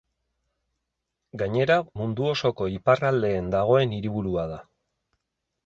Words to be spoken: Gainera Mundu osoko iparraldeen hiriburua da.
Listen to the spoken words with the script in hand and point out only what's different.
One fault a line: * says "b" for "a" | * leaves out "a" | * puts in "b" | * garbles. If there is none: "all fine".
* puts in "dagoen"